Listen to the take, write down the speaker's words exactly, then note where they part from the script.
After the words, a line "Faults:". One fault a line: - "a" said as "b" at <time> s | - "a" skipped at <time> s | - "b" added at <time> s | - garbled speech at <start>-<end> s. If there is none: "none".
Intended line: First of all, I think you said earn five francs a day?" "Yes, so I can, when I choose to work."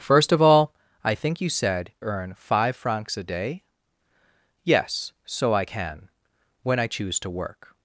First of all, I think you said earn five francs a day?" "Yes, so I can, when I choose to work."
Faults:
none